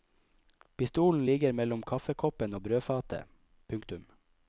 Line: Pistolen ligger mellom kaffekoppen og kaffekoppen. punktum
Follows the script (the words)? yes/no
no